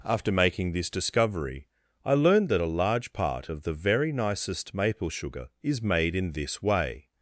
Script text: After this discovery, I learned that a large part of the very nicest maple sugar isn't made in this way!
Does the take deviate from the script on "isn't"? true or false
true